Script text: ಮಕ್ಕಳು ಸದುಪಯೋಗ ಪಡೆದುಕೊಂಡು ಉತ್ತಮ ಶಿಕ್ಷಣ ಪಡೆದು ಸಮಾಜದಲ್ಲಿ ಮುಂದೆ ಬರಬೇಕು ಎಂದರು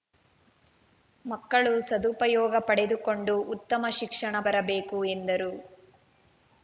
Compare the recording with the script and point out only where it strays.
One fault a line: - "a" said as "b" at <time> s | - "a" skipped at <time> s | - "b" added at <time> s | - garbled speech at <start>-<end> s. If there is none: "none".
- "ಪಡೆದು ಸಮಾಜದಲ್ಲಿ ಮುಂದೆ" skipped at 4.3 s